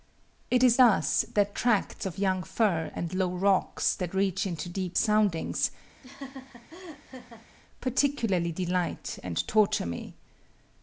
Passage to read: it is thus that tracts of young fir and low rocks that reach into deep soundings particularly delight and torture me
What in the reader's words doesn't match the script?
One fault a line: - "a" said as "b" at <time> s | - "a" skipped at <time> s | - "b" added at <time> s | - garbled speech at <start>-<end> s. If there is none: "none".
none